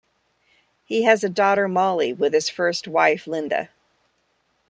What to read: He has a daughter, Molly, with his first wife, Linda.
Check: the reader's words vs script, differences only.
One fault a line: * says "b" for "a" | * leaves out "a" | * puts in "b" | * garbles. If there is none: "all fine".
all fine